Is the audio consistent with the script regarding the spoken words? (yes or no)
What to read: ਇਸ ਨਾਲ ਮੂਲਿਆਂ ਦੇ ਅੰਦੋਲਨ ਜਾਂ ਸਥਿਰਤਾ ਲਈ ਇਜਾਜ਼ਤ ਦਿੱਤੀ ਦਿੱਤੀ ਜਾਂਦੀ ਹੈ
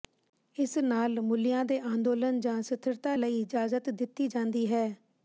no